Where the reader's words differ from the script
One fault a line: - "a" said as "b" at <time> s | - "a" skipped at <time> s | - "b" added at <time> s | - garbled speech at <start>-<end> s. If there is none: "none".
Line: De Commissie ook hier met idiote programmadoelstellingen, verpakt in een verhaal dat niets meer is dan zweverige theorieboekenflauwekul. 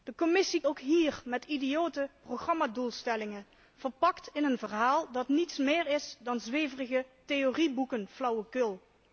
none